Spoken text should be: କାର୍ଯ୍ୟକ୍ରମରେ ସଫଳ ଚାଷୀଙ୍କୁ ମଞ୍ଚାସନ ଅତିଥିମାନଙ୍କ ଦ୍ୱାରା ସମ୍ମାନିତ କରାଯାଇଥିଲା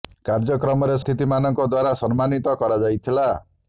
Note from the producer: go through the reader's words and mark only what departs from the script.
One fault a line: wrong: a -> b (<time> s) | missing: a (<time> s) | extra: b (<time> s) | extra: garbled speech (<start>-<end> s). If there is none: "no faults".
missing: ସଫଳ ଚାଷୀଙ୍କୁ ମଞ୍ଚାସନ (0.9 s)